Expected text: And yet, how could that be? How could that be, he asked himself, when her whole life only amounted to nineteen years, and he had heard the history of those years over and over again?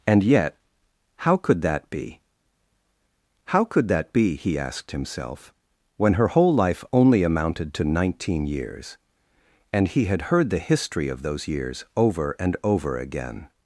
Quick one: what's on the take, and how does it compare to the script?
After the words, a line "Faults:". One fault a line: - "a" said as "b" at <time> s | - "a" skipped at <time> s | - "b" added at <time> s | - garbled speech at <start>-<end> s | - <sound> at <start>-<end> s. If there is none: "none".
And yet, how could that be? How could that be, he asked himself, when her whole life only amounted to nineteen years, and he had heard the history of those years over and over again?
Faults:
none